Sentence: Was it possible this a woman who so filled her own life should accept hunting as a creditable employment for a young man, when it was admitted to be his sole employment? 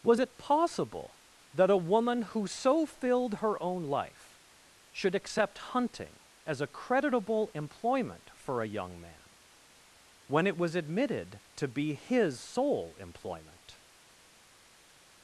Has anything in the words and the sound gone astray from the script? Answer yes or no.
yes